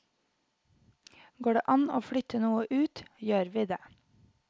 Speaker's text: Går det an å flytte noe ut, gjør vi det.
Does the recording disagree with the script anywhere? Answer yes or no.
no